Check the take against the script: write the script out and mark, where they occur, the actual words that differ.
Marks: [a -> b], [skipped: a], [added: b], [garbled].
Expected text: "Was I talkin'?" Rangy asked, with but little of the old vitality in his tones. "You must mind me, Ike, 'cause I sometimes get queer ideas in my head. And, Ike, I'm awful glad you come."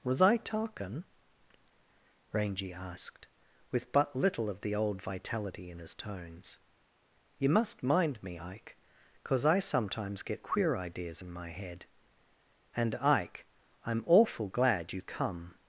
"Was I talkin'?" Rangy asked, with but little of the old vitality in his tones. "You must mind me, Ike, 'cause I sometimes get queer ideas in my head. And, Ike, I'm awful glad you come."